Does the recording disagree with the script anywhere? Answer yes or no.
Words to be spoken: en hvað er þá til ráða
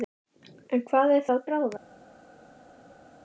yes